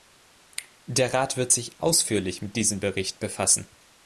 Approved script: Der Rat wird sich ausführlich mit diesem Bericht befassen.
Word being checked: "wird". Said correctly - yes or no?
yes